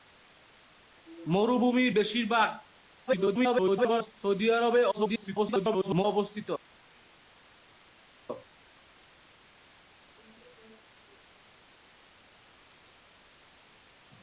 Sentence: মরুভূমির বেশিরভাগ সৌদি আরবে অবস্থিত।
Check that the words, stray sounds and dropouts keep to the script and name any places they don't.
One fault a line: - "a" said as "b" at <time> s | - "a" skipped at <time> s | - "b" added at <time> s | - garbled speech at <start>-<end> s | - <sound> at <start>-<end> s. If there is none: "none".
- garbled speech at 3.1-4.1 s
- garbled speech at 4.9-6.0 s